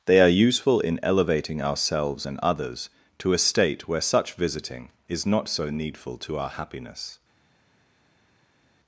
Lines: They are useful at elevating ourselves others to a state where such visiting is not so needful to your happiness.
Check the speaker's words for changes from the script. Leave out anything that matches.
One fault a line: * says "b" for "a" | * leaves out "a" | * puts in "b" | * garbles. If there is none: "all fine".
* says "in" for "at"
* puts in "and"
* says "our" for "your"